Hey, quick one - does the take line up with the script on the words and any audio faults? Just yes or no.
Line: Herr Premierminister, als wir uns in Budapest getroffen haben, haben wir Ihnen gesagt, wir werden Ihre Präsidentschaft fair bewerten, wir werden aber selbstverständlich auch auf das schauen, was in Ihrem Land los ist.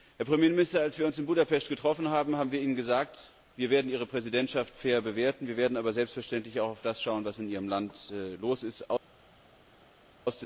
yes